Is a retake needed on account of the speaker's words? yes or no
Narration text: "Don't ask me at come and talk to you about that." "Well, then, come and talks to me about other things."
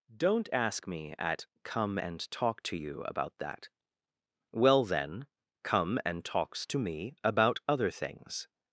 no